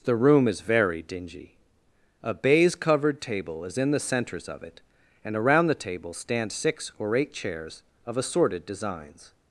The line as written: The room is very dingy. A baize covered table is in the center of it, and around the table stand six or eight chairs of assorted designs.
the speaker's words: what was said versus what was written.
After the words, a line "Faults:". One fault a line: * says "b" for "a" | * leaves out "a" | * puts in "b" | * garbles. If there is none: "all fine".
The room is very dingy. A baize covered table is in the centers of it, and around the table stand six or eight chairs of assorted designs.
Faults:
* says "centers" for "center"